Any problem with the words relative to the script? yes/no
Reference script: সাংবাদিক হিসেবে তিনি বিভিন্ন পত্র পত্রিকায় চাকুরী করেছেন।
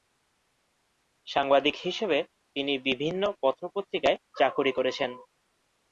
no